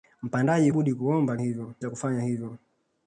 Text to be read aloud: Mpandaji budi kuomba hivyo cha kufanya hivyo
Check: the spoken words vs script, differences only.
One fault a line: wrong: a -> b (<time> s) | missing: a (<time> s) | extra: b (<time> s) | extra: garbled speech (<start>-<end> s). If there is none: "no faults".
no faults